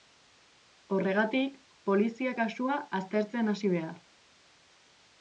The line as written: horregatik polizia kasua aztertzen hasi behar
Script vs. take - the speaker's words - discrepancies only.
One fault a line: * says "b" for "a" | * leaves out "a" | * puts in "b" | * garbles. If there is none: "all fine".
all fine